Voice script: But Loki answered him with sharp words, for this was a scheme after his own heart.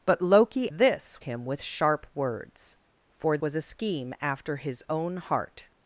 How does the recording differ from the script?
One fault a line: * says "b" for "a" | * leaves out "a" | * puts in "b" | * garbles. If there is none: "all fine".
* says "this" for "answered"
* leaves out "this"